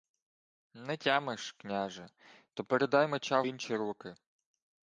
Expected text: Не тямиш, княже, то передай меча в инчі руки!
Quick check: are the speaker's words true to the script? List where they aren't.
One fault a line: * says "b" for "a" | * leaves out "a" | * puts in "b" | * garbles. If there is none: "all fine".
* leaves out "в"